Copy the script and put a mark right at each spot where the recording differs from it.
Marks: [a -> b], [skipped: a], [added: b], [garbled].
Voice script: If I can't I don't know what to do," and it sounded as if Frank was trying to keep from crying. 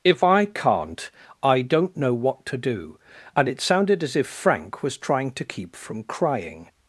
If I can't I don't know what to do," and it sounded as if Frank was trying to keep from crying.